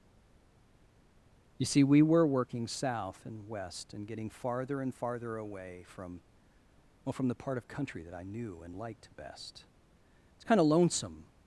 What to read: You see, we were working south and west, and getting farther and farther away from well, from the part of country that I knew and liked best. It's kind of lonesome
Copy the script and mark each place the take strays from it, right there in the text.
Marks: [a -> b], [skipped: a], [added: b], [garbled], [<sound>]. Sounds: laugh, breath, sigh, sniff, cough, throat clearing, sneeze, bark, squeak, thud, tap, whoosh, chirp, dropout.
You see, we were working south and west, and getting farther and farther away from well, from the part of country that I knew and liked best. It's kind of lonesome